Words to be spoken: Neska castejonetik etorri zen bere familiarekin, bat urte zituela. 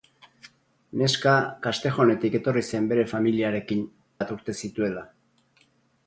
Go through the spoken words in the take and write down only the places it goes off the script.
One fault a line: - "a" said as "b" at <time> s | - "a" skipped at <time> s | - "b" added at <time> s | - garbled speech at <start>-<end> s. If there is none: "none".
none